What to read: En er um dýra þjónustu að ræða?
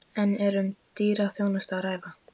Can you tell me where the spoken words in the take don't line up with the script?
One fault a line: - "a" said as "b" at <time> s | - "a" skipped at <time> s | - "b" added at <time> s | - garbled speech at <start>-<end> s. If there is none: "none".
none